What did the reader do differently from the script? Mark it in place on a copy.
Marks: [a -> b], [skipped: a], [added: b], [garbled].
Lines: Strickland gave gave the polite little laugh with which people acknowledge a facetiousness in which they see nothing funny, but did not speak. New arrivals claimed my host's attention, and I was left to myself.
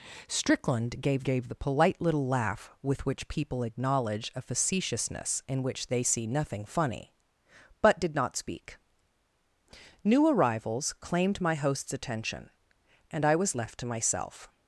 Strickland gave gave the polite little laugh with which people acknowledge a facetiousness in which they see nothing funny, but did not speak. New arrivals claimed my host's attention, and I was left to myself.